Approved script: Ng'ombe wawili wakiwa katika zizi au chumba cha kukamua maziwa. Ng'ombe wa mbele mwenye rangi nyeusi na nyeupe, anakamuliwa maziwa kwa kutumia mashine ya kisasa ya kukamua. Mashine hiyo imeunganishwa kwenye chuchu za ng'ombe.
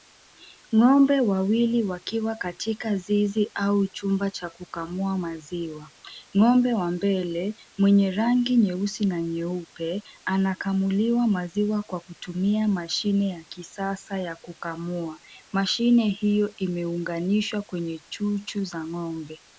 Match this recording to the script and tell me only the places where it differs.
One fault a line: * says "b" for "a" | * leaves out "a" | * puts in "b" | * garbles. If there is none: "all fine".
all fine